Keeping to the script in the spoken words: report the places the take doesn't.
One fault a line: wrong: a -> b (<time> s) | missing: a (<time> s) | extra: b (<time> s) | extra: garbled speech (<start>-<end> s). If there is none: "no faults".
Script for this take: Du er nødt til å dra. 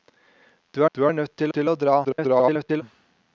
extra: du (0.9 s)
extra: til (1.5 s)
extra: garbled speech (2.0-2.8 s)